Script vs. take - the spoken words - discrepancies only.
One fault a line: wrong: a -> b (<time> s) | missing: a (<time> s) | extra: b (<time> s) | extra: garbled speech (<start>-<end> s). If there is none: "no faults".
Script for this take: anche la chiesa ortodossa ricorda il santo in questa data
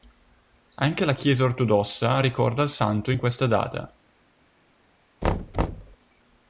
no faults